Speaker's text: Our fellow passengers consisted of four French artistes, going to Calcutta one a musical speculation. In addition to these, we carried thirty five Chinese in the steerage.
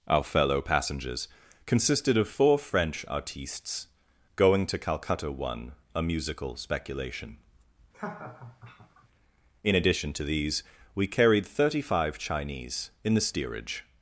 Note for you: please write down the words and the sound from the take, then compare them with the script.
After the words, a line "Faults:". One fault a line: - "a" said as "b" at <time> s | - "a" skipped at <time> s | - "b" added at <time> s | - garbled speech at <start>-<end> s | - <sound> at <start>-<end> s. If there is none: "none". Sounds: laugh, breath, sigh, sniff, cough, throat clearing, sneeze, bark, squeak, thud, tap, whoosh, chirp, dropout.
Our fellow passengers consisted of four French artistes, going to Calcutta one a musical speculation. In addition to these, we carried thirty five Chinese in the steerage.
Faults:
- laugh at 7.9-9.1 s